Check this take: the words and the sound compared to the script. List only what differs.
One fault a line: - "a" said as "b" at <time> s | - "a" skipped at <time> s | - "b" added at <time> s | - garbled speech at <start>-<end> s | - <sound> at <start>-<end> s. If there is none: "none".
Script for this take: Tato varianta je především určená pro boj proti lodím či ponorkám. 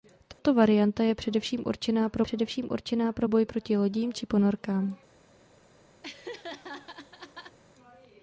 - dropout at 0.3-0.4 s
- "především určená pro" added at 2.2 s
- laugh at 6.0-7.6 s